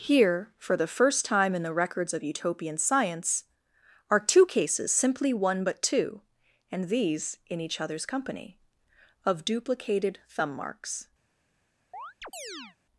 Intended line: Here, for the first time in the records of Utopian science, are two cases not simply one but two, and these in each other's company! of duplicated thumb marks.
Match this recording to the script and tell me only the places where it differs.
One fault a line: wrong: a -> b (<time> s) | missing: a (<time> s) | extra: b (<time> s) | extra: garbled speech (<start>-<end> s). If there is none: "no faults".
missing: not (4.9 s)